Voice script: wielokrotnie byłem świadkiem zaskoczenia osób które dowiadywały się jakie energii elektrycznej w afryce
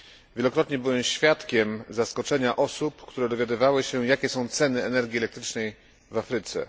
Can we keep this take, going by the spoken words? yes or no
no